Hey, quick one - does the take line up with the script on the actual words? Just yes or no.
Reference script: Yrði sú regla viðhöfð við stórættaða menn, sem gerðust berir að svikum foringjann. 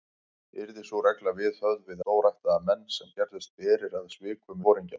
yes